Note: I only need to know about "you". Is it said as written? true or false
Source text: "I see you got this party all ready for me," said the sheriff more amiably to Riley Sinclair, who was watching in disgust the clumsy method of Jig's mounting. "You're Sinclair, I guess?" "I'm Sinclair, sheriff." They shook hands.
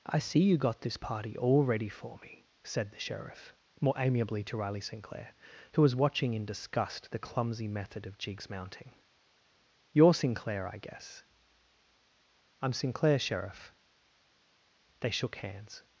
true